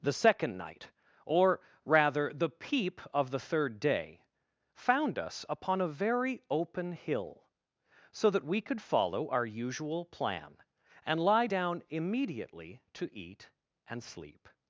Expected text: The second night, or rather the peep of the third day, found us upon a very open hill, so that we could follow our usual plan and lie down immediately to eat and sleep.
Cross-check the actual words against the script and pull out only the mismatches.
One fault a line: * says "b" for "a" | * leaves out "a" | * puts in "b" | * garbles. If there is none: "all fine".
all fine